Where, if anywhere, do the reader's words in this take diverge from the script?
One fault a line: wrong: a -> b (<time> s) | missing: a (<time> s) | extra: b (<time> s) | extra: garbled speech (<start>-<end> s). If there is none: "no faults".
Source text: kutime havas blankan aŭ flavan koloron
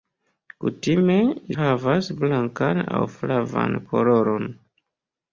no faults